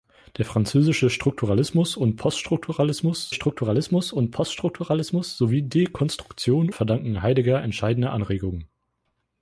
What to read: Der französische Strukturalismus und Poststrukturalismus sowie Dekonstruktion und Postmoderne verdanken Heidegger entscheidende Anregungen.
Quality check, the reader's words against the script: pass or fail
fail